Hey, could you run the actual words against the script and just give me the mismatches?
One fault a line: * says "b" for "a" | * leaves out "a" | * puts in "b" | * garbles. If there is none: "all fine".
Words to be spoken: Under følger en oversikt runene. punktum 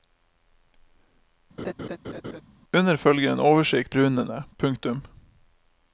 all fine